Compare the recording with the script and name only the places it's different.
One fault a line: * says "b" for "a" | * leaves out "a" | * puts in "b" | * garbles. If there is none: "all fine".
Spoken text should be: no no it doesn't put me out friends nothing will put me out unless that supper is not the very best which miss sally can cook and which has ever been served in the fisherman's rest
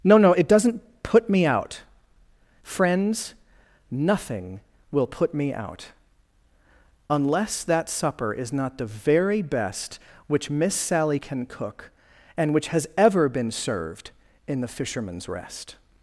all fine